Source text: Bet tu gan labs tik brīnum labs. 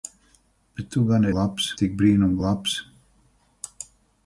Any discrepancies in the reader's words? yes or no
no